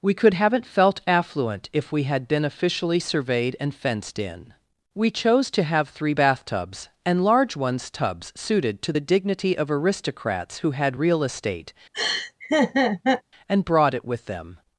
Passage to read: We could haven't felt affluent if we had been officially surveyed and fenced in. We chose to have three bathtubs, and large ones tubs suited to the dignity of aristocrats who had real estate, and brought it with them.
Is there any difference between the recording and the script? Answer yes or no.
no